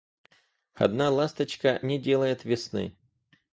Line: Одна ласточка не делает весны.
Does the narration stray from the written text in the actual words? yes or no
no